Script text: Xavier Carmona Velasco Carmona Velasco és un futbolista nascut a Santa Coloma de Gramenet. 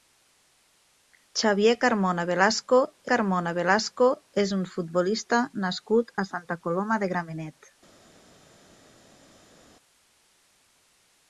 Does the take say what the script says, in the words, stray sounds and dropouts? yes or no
yes